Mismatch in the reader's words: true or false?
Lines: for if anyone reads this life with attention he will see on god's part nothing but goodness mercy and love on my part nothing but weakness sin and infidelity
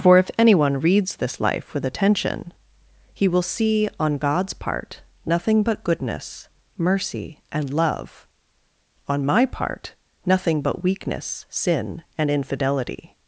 false